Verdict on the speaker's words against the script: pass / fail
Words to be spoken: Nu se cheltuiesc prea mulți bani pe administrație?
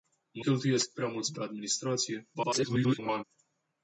fail